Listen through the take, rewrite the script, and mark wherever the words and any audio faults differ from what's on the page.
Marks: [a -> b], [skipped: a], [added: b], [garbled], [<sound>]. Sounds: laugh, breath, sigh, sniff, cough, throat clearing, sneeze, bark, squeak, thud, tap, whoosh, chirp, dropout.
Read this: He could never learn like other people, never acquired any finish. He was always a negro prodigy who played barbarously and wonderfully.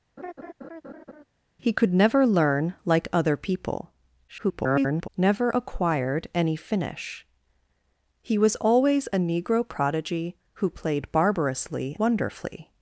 [laugh] He could never learn like other people, [garbled] never acquired any finish. He was always a negro prodigy who played barbarously [skipped: and] wonderfully.